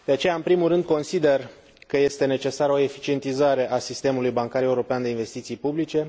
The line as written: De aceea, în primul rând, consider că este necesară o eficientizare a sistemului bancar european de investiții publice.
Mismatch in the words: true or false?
false